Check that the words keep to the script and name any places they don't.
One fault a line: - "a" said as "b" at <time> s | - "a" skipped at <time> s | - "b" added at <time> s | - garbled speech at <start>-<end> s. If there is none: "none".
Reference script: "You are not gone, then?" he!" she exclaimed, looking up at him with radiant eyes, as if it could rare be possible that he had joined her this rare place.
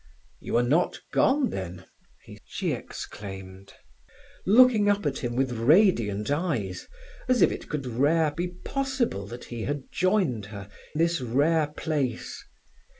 none